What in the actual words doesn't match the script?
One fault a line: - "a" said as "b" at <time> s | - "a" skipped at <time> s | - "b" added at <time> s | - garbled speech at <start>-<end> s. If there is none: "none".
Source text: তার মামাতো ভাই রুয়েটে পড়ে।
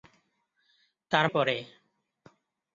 - "মামাতো ভাই রুয়েটে" skipped at 1.2 s